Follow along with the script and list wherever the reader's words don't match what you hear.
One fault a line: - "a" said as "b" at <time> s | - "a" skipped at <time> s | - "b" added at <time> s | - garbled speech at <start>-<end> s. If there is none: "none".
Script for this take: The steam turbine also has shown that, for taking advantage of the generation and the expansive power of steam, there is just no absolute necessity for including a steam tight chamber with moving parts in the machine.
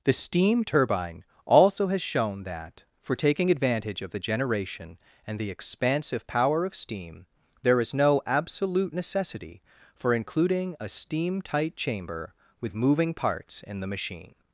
- "just" skipped at 7.9 s